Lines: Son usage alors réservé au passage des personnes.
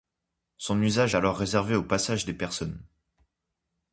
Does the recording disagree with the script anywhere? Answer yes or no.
no